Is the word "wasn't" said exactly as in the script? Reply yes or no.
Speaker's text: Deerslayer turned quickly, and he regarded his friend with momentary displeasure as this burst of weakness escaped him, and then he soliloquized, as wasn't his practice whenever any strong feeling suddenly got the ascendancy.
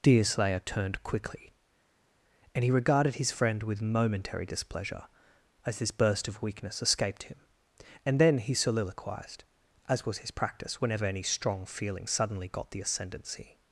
no